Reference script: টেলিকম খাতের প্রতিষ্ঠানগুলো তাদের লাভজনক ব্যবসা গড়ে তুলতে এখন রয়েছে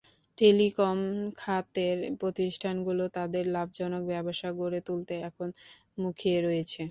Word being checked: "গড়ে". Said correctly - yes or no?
yes